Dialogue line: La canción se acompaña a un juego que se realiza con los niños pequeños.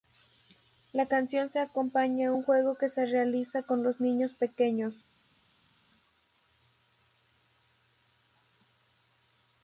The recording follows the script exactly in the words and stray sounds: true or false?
true